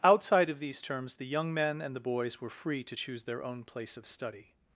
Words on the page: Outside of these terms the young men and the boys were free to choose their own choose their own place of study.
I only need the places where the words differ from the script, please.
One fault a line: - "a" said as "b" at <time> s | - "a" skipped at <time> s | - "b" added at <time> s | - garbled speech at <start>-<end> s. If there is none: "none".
- "choose their own" skipped at 3.6 s